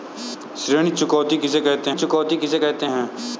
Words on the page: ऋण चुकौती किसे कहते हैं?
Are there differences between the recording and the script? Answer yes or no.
yes